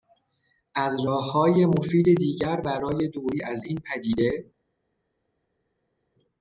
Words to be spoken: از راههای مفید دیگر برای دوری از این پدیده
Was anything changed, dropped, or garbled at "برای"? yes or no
no